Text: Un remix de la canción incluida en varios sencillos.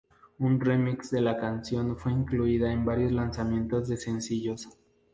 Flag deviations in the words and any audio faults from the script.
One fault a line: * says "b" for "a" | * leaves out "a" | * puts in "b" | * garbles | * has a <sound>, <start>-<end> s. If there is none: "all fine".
* puts in "fue"
* puts in "lanzamientos de"